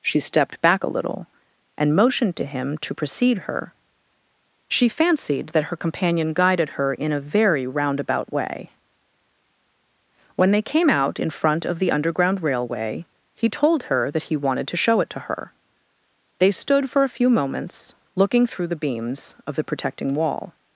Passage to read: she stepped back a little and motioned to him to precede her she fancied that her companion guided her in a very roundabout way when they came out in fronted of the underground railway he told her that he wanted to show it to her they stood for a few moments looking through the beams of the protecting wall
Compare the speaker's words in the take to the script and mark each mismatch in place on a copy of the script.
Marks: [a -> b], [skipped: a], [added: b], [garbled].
she stepped back a little and motioned to him to precede her she fancied that her companion guided her in a very roundabout way when they came out in [fronted -> front] of the underground railway he told her that he wanted to show it to her they stood for a few moments looking through the beams of the protecting wall